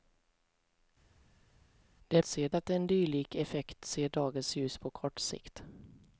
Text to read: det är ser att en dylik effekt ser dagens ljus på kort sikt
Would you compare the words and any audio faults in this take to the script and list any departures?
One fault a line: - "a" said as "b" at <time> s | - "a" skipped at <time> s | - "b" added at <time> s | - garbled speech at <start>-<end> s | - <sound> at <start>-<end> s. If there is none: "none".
none